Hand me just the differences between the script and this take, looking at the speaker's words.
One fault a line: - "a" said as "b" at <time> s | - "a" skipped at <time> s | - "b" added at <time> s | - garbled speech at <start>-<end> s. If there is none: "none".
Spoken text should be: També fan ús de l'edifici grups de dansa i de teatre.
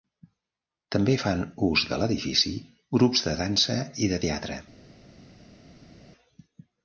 none